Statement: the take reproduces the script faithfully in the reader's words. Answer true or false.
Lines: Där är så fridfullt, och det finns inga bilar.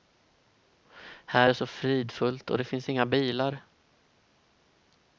false